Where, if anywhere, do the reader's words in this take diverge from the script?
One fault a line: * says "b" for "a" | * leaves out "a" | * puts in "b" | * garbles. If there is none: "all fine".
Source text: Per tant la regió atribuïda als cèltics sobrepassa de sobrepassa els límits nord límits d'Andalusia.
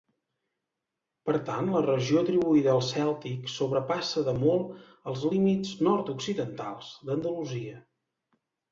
* says "molt" for "sobrepassa"
* says "occidentals" for "límits"